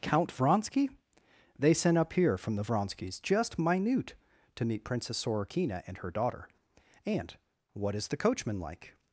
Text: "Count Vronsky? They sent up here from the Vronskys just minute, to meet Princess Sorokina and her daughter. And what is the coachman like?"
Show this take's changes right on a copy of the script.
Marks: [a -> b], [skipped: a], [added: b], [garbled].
"Count Vronsky? They sent up here from the Vronskys just minute, to meet Princess Sorokina and her daughter. And what is the coachman like?"